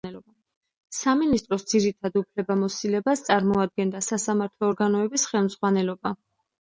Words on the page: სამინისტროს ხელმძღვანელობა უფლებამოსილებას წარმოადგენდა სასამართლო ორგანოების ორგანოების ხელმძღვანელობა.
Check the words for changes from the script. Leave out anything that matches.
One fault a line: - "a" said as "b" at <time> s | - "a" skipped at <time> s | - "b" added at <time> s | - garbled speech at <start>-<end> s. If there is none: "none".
- "ხელმძღვანელობა" said as "ძირითად" at 1.7 s
- "ორგანოების" skipped at 5.3 s